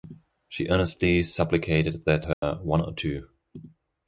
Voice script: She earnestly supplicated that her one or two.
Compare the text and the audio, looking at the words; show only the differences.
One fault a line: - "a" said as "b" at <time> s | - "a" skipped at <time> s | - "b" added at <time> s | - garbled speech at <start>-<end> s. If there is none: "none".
none